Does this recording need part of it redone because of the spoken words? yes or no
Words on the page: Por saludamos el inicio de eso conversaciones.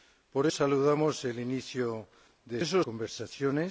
no